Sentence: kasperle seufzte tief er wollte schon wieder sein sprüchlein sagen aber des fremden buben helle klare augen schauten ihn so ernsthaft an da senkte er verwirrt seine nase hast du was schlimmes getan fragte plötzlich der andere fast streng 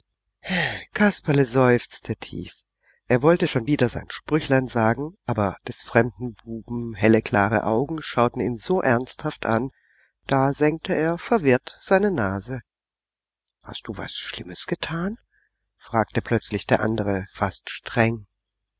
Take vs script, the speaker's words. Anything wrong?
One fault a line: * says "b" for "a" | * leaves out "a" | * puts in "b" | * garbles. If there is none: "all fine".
all fine